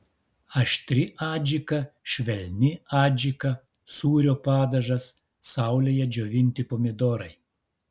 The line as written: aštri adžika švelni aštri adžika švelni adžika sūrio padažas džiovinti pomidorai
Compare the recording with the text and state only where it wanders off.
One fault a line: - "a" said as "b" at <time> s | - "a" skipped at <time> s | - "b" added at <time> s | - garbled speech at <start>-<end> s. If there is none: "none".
- "aštri" skipped at 2.7 s
- "švelni adžika" skipped at 3.5 s
- "saulėje" added at 5.5 s